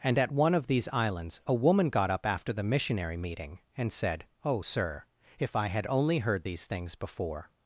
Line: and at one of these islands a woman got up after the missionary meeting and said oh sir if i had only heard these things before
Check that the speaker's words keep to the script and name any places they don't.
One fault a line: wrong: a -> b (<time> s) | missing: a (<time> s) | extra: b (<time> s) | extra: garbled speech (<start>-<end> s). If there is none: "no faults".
no faults